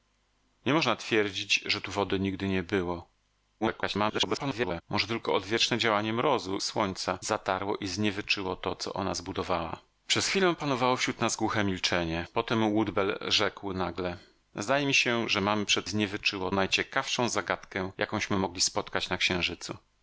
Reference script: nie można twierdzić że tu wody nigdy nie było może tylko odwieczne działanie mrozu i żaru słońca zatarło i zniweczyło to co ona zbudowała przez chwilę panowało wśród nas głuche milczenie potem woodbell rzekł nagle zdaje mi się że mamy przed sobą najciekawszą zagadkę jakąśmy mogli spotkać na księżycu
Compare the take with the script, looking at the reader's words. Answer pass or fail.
fail